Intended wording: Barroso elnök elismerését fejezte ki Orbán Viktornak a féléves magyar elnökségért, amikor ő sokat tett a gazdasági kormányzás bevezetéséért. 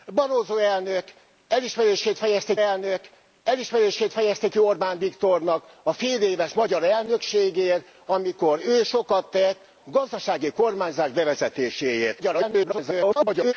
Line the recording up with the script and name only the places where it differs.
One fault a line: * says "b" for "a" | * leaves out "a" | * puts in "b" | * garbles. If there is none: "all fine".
* puts in "elnök elismerését fejezte"
* leaves out "a"
* garbles